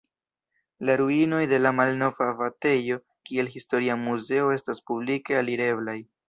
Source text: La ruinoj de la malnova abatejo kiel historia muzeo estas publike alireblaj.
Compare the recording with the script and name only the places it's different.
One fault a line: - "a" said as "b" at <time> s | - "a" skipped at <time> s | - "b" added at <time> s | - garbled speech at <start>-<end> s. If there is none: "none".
none